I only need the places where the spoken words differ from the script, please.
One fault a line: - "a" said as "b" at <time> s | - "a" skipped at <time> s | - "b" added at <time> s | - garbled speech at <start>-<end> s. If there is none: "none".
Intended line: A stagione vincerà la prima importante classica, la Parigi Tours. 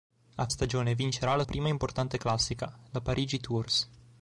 none